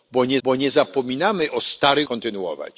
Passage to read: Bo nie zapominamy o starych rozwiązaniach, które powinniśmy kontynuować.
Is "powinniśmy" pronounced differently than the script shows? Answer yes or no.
yes